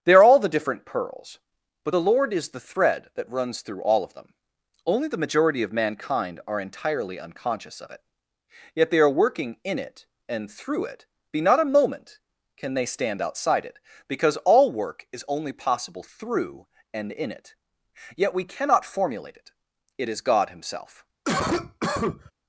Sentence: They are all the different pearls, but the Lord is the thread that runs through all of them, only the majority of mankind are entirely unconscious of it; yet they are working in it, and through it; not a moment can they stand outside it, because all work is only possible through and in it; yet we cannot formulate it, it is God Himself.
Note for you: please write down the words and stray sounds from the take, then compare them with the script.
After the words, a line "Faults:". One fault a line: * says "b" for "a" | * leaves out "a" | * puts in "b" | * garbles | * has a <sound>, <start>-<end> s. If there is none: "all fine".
They are all the different pearls, but the Lord is the thread that runs through all of them, only the majority of mankind are entirely unconscious of it; yet they are working in it, and through it; be not a moment can they stand outside it, because all work is only possible through and in it; yet we cannot formulate it, it is God Himself.
Faults:
* puts in "be"
* has a cough, 21.2-22.3 s